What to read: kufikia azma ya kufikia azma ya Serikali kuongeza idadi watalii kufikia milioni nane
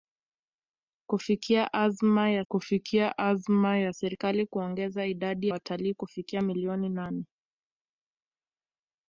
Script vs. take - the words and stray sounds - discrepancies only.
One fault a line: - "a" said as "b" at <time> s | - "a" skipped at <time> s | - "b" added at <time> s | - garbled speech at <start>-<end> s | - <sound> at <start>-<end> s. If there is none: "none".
none